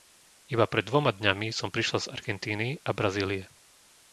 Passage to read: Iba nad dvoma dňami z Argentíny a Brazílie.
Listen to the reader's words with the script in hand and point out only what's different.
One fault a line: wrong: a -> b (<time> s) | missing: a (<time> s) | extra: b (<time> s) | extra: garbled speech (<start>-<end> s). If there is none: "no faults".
wrong: nad -> pred (0.7 s)
extra: som prišla (1.5 s)